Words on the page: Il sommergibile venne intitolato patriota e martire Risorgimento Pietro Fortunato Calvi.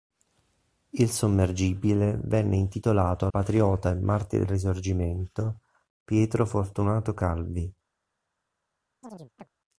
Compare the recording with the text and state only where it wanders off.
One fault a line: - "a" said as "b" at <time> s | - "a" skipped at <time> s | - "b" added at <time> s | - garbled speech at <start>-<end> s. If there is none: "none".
none